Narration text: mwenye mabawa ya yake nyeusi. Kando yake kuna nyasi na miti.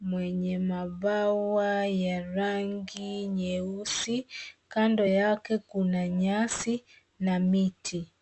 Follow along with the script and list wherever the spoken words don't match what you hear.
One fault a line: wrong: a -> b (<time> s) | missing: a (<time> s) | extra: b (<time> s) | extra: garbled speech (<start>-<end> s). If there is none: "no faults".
wrong: yake -> rangi (2.2 s)